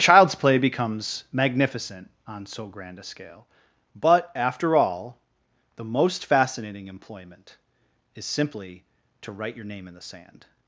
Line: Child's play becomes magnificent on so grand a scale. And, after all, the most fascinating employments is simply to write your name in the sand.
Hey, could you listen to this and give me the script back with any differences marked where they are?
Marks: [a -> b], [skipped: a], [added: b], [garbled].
Child's play becomes magnificent on so grand a scale. [And, -> But] after all, the most fascinating [employments -> employment] is simply to write your name in the sand.